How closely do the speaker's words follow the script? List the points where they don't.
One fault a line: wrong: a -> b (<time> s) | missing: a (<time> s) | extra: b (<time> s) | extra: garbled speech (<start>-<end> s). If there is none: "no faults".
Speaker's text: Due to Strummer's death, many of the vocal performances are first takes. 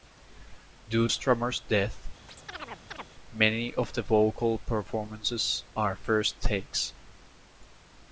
missing: to (1.1 s)